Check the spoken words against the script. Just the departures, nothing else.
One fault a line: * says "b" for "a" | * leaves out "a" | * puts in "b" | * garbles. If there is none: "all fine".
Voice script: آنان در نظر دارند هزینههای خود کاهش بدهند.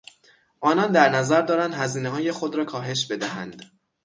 * puts in "را"